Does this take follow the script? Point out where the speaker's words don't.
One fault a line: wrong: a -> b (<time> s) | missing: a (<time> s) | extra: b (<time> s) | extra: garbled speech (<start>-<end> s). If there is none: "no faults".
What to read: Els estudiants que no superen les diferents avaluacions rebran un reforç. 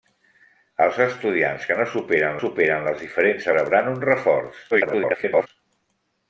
extra: superen (2.4 s)
missing: avaluacions (3.5 s)
extra: garbled speech (4.7-5.5 s)